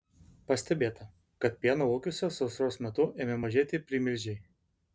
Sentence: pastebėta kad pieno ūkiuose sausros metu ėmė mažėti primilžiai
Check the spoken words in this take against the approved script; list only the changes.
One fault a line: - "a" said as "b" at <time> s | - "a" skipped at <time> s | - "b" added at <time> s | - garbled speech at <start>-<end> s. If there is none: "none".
none